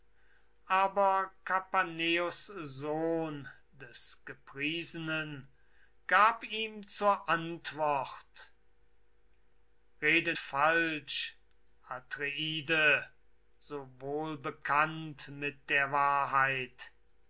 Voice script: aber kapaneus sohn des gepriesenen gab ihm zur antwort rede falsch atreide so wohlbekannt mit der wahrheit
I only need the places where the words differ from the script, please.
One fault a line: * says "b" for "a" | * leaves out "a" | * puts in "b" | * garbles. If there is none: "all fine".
all fine